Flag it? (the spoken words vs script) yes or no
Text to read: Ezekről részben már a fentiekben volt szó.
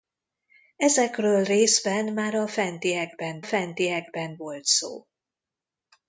yes